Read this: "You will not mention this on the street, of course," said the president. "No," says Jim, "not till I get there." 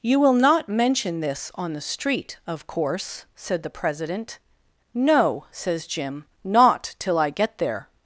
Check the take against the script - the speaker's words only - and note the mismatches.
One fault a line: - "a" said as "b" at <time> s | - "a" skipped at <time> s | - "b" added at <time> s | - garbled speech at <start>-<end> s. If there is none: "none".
none